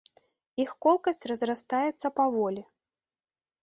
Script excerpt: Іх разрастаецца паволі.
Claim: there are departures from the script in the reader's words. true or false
true